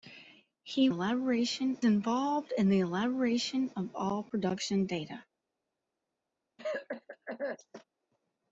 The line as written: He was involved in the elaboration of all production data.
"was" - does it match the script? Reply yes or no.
no